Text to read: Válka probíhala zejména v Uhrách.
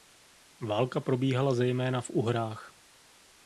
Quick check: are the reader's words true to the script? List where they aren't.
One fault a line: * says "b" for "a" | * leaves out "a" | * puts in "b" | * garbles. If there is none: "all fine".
all fine